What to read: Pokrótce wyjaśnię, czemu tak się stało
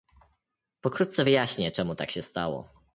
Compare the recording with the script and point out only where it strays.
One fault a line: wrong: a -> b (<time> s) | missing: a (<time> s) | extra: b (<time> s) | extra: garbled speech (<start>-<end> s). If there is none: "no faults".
no faults